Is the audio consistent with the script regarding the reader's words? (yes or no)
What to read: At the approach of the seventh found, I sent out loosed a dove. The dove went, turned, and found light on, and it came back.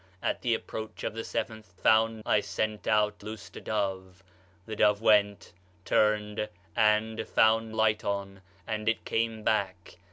yes